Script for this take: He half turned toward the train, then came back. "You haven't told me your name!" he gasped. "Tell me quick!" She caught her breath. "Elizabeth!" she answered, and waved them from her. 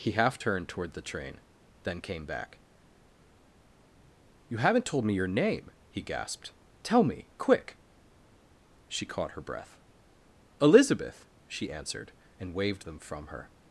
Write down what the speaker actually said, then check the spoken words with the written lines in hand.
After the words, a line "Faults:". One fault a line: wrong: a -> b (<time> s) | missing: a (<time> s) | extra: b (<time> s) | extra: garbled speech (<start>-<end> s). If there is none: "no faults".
He half turned toward the train, then came back. "You haven't told me your name!" he gasped. "Tell me quick!" She caught her breath. "Elizabeth!" she answered, and waved them from her.
Faults:
no faults